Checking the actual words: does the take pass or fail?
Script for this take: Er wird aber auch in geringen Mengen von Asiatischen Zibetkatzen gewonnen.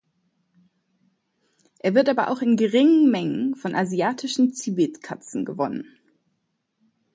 pass